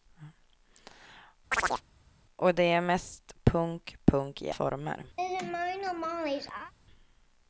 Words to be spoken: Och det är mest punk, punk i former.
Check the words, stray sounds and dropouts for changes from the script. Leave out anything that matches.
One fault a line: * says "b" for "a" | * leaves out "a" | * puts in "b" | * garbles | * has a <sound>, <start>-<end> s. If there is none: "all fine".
* has a chirp, 1.5-1.8 s
* has a laugh, 5.2-6.7 s